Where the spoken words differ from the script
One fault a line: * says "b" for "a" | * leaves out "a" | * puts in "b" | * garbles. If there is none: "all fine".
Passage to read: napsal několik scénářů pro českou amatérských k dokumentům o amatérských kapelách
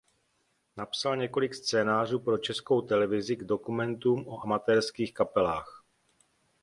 * says "televizi" for "amatérských"